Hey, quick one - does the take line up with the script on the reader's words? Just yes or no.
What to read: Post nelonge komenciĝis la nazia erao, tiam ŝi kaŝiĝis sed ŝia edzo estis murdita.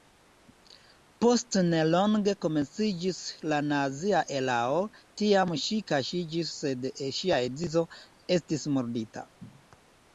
yes